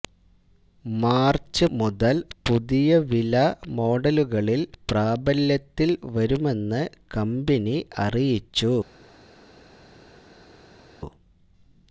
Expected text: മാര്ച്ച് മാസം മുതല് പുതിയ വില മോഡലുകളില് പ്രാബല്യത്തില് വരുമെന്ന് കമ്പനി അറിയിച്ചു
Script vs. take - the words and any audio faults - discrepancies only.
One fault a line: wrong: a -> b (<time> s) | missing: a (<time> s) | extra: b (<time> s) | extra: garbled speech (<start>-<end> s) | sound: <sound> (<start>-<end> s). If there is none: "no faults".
missing: മാസം (1.6 s)